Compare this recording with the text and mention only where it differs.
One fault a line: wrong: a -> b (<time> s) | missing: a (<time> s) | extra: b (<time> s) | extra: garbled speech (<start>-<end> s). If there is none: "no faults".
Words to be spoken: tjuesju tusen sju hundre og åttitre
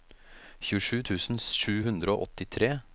no faults